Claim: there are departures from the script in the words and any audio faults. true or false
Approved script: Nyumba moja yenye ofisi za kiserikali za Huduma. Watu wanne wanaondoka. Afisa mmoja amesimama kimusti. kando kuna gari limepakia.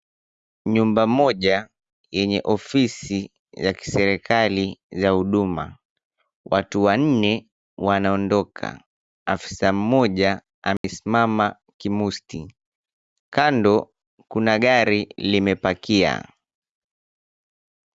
true